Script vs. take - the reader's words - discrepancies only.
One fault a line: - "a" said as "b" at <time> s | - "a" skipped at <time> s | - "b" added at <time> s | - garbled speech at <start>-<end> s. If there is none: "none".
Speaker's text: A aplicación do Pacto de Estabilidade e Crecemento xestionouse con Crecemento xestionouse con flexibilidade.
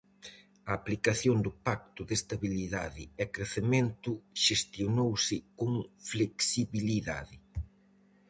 - "Crecemento xestionouse con" skipped at 5.7 s